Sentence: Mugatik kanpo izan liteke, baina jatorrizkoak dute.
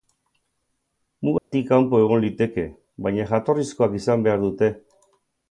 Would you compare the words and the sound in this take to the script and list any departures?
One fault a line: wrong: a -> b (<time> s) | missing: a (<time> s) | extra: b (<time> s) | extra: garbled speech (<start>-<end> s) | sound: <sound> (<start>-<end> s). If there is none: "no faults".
sound: dropout (1.4-1.5 s)
wrong: izan -> egon (2.0 s)
extra: izan behar (4.0 s)